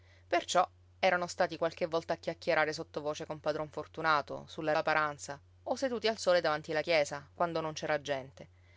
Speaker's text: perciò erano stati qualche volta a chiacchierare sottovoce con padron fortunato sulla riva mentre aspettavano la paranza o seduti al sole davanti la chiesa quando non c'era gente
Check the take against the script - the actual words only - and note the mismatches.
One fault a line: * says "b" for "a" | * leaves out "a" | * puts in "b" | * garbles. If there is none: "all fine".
* leaves out "riva mentre aspettavano"